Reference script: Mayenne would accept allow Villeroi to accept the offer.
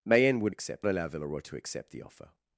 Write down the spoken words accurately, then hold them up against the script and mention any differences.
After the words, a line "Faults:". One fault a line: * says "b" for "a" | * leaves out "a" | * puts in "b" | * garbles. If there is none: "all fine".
Mayenne would accept allow Villeroi to accept the offer.
Faults:
all fine